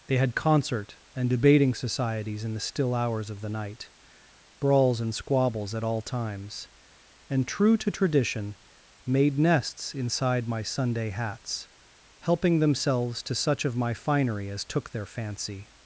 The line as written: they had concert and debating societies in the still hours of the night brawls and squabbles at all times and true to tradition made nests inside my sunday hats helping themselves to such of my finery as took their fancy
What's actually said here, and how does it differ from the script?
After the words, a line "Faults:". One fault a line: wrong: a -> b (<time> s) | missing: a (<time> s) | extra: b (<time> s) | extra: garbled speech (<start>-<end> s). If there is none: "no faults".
they had concert and debating societies in the still hours of the night brawls and squabbles at all times and true to tradition made nests inside my sunday hats helping themselves to such of my finery as took their fancy
Faults:
no faults